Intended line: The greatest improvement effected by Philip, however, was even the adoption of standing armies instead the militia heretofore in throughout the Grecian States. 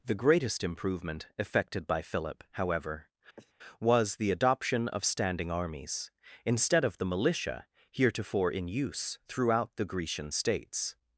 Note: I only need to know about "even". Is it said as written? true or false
false